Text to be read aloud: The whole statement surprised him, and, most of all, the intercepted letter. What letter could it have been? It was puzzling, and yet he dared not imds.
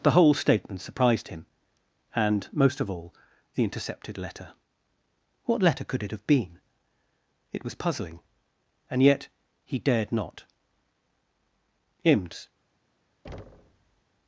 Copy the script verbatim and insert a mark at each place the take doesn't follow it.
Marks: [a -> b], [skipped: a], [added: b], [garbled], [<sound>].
The whole statement surprised him, and, most of all, the intercepted letter. What letter could it have been? It was puzzling, and yet he dared not imds. [thud]